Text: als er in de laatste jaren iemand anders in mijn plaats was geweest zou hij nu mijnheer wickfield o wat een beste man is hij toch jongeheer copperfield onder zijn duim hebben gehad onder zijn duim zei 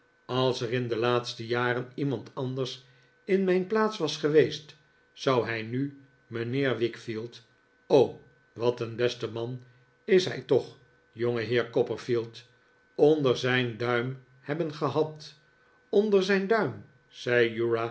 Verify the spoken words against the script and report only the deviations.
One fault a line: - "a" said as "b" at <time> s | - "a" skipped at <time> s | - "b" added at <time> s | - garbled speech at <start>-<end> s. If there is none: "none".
none